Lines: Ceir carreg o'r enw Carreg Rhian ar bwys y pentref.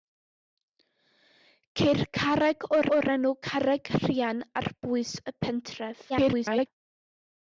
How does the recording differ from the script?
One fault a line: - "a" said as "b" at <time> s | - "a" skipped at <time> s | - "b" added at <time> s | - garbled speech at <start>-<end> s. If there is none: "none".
- "o'r" added at 3.0 s
- garbled speech at 6.1-6.7 s